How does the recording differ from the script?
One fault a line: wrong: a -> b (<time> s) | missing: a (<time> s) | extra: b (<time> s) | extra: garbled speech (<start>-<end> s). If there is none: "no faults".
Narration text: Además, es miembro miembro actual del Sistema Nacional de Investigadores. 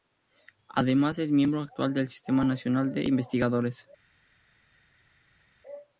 missing: miembro (1.6 s)